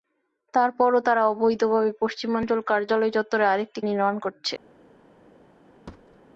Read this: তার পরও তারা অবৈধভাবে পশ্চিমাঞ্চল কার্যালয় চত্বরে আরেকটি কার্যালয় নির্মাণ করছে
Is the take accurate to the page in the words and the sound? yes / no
no